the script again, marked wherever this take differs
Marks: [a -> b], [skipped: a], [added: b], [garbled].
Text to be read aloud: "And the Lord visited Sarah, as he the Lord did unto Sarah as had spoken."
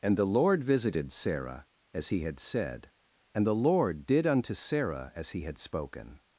"And the Lord visited Sarah, as he [added: had said and] the Lord did unto Sarah as [added: he] had spoken."